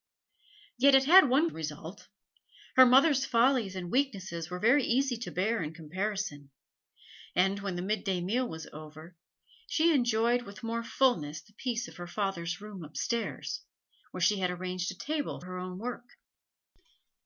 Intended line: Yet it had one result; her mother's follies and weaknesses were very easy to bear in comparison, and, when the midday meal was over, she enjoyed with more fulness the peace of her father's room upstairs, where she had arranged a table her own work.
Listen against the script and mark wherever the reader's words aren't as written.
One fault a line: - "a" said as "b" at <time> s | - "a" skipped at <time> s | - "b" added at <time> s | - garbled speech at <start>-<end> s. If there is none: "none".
none